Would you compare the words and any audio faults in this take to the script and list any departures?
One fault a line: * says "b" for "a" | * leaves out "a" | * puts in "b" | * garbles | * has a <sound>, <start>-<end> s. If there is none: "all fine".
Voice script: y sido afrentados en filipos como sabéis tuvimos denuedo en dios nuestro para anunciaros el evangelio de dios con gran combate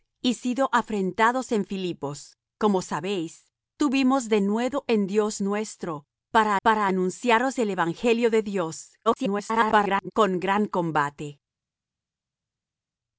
* puts in "para"
* garbles